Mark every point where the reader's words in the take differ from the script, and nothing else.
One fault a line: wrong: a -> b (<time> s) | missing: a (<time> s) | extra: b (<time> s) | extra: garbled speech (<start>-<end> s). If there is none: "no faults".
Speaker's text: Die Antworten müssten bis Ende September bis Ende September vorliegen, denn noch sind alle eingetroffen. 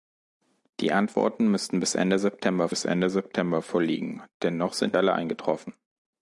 no faults